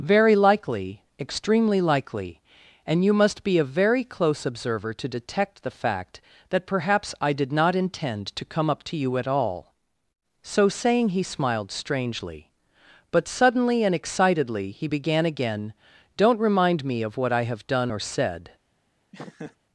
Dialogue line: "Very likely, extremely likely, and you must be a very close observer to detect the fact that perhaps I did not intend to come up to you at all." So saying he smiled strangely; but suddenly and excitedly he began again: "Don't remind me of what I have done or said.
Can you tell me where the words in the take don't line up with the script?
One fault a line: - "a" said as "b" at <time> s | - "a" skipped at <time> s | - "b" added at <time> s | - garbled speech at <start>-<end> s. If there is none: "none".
none